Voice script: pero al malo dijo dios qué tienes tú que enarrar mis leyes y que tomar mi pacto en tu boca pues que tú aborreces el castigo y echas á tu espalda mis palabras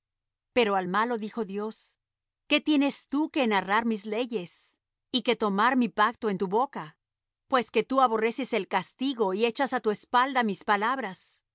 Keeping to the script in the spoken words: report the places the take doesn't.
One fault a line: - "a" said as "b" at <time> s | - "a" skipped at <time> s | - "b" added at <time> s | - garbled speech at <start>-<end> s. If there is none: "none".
none